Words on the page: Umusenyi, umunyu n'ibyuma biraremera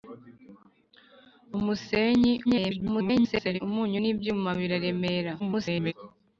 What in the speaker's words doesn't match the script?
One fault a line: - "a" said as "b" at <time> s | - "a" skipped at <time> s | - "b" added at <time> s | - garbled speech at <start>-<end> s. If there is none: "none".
- garbled speech at 2.4-3.6 s
- garbled speech at 5.4-5.9 s